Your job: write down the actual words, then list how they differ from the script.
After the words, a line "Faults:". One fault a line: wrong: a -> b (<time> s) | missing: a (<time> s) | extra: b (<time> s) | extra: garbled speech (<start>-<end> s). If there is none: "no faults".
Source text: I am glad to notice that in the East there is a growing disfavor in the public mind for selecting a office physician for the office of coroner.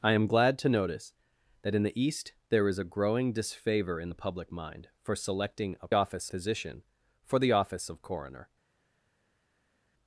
I am glad to notice that in the East there is a growing disfavor in the public mind for selecting a office physician for the office of coroner.
Faults:
no faults